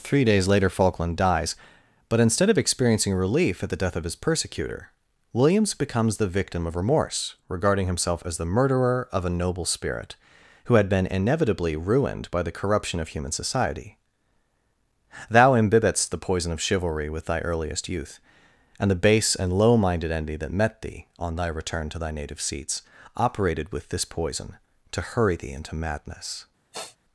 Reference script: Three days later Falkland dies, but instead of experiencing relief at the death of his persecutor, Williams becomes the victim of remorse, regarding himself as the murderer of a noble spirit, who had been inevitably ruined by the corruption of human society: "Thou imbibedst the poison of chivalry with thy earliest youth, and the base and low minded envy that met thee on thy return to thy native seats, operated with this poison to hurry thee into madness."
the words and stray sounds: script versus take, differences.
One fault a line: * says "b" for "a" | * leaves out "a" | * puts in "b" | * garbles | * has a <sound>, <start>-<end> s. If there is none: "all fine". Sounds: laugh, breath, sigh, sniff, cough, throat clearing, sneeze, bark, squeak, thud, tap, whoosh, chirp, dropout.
* has a sniff, 26.7-27.0 s